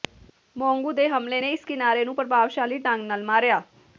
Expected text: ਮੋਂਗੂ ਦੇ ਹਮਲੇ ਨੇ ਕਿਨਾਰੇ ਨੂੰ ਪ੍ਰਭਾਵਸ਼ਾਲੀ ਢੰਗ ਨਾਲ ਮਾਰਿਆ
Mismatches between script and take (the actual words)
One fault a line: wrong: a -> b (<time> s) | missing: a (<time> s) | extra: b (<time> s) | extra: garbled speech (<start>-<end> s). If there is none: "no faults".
extra: ਇਸ (1.5 s)